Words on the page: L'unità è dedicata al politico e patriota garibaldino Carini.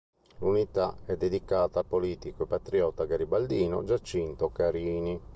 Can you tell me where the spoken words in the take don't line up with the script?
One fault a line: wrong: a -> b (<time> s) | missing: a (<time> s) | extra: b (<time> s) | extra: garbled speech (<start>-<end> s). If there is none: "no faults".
extra: Giacinto (3.8 s)